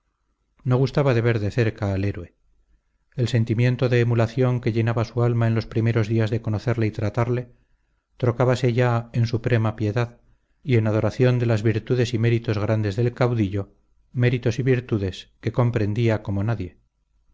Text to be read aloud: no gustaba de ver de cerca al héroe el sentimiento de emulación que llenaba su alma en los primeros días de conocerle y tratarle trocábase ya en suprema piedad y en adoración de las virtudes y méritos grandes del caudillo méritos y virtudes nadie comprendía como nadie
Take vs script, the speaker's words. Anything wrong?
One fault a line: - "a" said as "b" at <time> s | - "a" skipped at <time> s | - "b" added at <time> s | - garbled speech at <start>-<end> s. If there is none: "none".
- "nadie" said as "que" at 15.4 s